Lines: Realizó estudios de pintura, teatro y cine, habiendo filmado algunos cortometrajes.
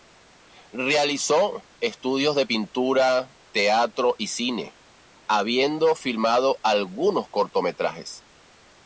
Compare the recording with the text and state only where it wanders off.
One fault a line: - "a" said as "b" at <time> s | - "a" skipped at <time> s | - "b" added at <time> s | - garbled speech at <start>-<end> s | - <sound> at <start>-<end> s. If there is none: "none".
none